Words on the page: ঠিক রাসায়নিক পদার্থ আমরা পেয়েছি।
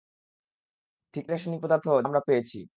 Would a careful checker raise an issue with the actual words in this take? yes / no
no